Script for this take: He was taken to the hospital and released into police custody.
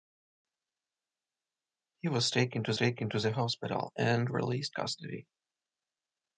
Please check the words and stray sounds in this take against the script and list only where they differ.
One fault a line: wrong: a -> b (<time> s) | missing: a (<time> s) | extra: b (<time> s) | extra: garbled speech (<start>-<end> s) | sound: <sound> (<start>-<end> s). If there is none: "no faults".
extra: taken to (2.7 s)
missing: into police (4.7 s)